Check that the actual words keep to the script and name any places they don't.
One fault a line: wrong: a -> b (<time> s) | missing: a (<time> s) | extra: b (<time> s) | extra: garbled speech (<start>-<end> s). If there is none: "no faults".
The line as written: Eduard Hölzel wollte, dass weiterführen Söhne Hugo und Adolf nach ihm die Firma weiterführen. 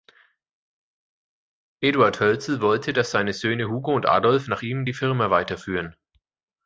wrong: weiterführen -> seine (3.1 s)